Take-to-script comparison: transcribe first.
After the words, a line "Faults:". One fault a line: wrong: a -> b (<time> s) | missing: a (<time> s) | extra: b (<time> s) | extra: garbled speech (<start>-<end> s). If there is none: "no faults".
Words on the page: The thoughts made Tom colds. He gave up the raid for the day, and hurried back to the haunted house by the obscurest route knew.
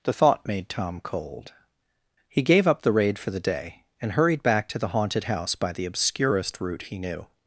The thought made Tom cold. He gave up the raid for the day, and hurried back to the haunted house by the obscurest route he knew.
Faults:
wrong: thoughts -> thought (0.1 s)
wrong: colds -> cold (1.0 s)
extra: he (6.8 s)